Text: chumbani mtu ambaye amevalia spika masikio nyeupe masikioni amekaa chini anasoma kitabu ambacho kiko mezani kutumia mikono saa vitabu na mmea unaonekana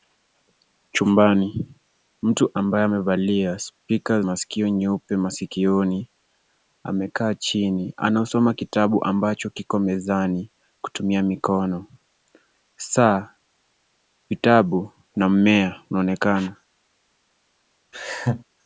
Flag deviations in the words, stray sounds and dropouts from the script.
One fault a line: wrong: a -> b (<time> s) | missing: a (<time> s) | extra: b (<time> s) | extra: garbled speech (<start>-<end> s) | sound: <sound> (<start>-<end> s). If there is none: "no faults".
sound: laugh (17.9-18.4 s)